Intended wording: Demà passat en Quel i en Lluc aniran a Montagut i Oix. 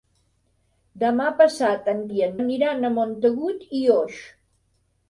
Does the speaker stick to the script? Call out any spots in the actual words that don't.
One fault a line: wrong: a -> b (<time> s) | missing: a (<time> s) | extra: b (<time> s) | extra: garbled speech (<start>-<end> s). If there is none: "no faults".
missing: Quel (2.0 s)
missing: Lluc (2.3 s)